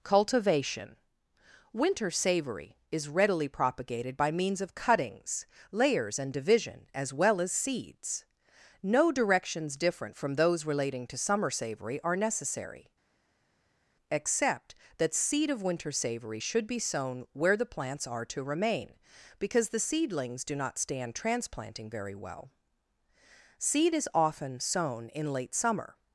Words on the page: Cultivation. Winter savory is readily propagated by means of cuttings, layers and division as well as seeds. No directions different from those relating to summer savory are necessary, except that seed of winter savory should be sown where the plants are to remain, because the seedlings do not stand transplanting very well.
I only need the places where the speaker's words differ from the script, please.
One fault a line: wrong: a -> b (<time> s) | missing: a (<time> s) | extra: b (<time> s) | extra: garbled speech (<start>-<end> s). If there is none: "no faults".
extra: Seed is often sown in late summer (23.6 s)